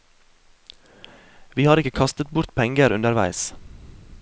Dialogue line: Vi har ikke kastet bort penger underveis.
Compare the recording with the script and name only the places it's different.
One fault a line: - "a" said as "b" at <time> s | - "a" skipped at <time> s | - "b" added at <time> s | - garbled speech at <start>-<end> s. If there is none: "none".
none